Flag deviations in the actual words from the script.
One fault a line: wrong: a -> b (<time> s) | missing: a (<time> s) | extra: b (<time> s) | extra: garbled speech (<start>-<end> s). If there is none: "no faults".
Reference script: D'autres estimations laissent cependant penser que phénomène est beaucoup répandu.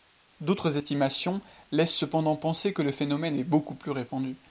extra: le (2.8 s)
extra: plus (3.7 s)